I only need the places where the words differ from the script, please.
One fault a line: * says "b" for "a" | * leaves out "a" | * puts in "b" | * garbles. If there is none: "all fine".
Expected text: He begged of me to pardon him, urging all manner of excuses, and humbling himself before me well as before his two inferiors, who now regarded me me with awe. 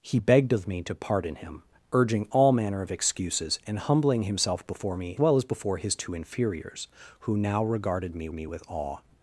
all fine